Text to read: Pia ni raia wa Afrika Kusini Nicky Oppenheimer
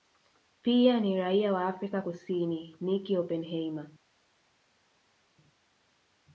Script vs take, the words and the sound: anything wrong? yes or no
no